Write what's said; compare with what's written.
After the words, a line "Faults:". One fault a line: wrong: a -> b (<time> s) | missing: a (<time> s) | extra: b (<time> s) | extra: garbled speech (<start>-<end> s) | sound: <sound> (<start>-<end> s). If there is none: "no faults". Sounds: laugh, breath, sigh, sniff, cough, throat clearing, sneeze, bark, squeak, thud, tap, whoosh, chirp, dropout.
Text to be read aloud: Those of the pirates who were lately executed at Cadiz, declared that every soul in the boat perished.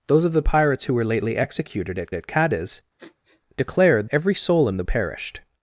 Those of the pirates who were lately executed at at Cadiz, declared every soul in the perished.
Faults:
extra: at (2.1 s)
sound: sniff (3.0-3.4 s)
missing: that (4.1 s)
missing: boat (4.8 s)